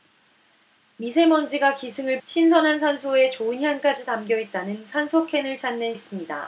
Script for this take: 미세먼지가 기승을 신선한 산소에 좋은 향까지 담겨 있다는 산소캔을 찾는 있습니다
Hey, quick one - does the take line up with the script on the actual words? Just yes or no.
yes